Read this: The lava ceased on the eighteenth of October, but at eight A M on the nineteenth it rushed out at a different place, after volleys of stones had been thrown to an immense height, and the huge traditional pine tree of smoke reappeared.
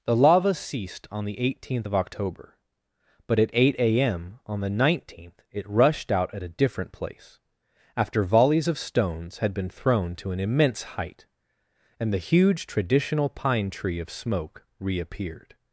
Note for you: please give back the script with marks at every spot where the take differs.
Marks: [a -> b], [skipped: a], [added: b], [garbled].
The lava ceased on the eighteenth of October, but at eight A M on the nineteenth it rushed out at a different place, after volleys of stones had been thrown to an immense height, and the huge traditional pine tree of smoke reappeared.